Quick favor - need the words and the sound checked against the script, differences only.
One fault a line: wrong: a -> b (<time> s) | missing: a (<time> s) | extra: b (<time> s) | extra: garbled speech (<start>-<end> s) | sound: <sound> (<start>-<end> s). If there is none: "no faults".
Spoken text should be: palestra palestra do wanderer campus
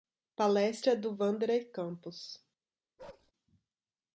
missing: palestra (0.9 s)
sound: bark (3.0-3.3 s)